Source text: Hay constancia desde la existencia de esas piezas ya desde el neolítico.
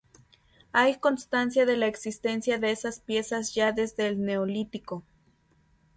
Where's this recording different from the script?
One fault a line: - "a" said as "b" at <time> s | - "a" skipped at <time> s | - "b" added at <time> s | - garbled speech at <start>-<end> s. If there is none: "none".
- "desde" said as "de" at 1.7 s